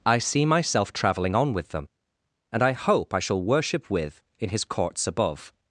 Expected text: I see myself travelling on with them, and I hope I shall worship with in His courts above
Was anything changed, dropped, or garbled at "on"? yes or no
no